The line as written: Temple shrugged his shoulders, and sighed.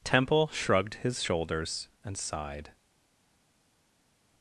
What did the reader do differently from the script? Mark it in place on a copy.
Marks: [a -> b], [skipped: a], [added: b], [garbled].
Temple shrugged his shoulders, and sighed.